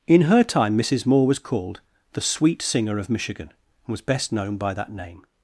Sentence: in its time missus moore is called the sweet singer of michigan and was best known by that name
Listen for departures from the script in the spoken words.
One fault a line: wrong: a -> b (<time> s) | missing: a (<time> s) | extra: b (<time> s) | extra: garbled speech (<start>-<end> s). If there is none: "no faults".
wrong: its -> her (0.2 s)
wrong: is -> was (1.3 s)